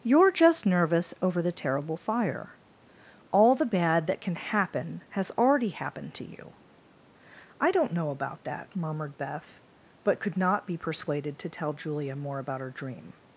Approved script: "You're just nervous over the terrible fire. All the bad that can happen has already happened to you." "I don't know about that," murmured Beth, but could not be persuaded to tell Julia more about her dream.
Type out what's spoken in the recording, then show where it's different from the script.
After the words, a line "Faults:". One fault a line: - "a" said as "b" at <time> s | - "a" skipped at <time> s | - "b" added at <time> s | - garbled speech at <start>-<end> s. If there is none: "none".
"You're just nervous over the terrible fire. All the bad that can happen has already happened to you." "I don't know about that," murmured Beth, but could not be persuaded to tell Julia more about her dream.
Faults:
none